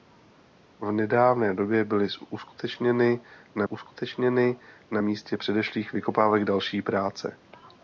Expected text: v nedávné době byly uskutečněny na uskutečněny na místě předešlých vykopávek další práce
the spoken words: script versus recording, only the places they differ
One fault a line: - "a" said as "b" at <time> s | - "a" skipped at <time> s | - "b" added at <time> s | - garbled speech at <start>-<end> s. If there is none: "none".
none